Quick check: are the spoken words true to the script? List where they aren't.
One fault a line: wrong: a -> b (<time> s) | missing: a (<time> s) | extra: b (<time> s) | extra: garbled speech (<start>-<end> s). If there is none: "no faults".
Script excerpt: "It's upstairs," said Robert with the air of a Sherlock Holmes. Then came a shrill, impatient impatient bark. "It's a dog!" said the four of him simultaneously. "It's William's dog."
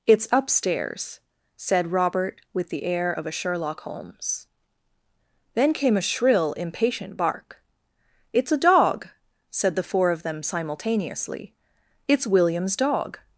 missing: impatient (7.2 s)
wrong: him -> them (10.2 s)